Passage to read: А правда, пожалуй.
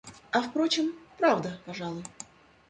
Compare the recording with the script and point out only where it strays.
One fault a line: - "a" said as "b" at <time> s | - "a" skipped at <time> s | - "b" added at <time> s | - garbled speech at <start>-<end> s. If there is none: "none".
- "впрочем" added at 0.4 s